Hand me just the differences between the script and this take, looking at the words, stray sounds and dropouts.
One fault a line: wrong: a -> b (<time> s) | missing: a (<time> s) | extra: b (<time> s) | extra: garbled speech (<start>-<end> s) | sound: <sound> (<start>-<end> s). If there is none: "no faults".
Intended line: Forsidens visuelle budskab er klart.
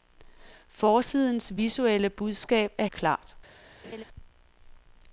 sound: laugh (3.8-4.0 s)